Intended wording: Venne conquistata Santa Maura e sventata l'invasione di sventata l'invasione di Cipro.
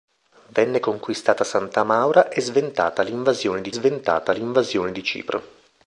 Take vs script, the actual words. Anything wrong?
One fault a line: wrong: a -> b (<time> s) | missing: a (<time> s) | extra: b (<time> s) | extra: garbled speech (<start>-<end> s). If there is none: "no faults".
no faults